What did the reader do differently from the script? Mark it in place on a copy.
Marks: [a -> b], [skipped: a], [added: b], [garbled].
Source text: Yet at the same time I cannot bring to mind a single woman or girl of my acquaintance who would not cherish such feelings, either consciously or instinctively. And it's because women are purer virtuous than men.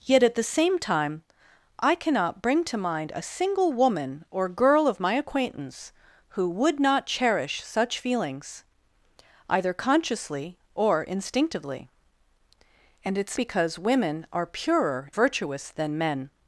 Yet at the same time I cannot bring to mind a single woman or girl of my acquaintance who would not cherish such feelings, either consciously or instinctively. And it's because women are purer virtuous than men.